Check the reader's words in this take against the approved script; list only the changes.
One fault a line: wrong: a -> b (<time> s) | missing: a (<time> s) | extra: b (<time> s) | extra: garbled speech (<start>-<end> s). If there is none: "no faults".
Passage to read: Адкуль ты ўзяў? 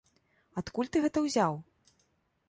extra: гэта (1.1 s)